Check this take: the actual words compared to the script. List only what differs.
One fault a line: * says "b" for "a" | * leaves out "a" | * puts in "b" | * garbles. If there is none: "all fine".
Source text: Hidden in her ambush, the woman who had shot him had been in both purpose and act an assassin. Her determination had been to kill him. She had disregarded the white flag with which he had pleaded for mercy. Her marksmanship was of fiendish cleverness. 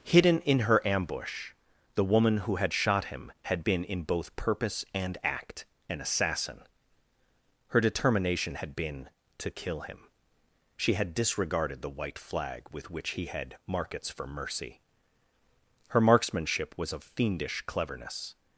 * says "markets" for "pleaded"